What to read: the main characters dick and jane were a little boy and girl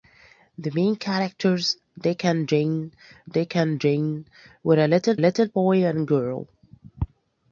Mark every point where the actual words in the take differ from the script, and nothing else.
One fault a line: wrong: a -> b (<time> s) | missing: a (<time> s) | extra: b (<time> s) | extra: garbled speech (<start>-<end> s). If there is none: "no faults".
extra: dick and jane (3.3 s)
extra: little (5.2 s)